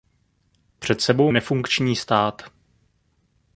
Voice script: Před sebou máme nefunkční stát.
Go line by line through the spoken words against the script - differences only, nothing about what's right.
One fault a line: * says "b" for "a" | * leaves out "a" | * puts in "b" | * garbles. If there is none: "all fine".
* leaves out "máme"